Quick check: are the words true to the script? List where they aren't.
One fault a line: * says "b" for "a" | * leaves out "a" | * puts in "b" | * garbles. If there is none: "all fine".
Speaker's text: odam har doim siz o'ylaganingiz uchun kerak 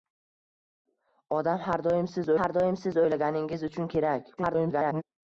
* puts in "har doim siz"
* garbles